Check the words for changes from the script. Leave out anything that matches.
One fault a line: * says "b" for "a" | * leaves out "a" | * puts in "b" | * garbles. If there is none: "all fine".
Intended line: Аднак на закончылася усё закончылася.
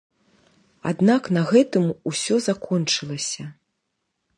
* says "гэтым" for "закончылася"